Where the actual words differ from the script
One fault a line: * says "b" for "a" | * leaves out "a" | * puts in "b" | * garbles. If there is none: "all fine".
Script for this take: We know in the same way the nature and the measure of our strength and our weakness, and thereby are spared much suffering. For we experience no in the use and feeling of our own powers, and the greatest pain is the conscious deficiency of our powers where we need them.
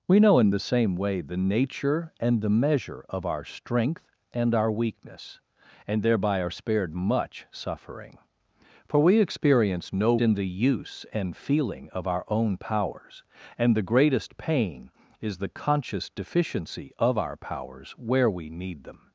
all fine